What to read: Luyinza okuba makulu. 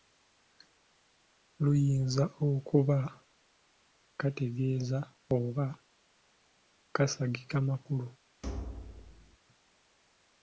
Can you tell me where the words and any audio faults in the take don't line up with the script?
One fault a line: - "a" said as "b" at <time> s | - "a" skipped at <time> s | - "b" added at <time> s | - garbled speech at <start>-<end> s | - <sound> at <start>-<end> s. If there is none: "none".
- "kategeeza oba kasagika" added at 4.2 s
- thud at 8.4-9.4 s